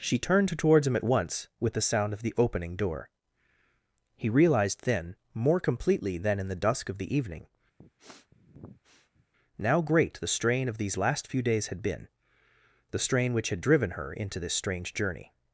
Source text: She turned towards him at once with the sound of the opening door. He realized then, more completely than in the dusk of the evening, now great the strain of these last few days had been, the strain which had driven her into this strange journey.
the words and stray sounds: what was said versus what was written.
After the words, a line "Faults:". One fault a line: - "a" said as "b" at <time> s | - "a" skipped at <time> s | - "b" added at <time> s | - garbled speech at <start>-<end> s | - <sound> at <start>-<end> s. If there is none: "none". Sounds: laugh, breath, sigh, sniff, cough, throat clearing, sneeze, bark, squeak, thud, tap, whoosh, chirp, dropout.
She turned towards him at once with the sound of the opening door. He realized then, more completely than in the dusk of the evening, now great the strain of these last few days had been, the strain which had driven her into this strange journey.
Faults:
- sniff at 7.8-9.3 s